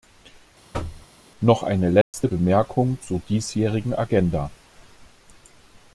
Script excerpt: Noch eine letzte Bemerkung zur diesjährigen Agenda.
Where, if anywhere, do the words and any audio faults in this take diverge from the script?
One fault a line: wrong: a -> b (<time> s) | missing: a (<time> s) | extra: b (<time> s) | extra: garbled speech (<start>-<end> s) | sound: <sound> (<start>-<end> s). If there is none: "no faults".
sound: thud (0.7-1.1 s)
sound: dropout (2.0-2.1 s)